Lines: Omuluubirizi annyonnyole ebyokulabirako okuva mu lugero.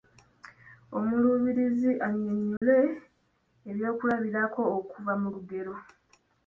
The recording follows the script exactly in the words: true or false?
true